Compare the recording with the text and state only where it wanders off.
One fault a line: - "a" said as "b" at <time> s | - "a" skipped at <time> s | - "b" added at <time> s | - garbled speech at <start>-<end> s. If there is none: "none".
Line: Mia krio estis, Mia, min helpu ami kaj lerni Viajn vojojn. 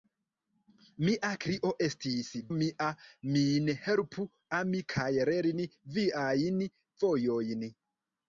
none